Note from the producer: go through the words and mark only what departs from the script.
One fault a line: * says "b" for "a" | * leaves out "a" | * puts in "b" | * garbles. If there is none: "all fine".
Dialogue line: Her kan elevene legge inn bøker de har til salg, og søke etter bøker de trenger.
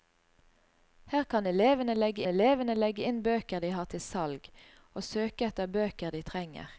* puts in "elevene legge"